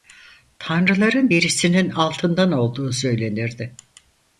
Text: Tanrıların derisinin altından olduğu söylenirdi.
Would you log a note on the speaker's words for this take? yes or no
no